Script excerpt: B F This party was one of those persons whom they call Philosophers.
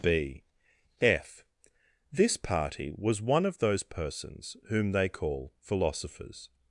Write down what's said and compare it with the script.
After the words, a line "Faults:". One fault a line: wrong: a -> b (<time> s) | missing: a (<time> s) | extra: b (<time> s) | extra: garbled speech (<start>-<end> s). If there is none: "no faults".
B F This party was one of those persons whom they call Philosophers.
Faults:
no faults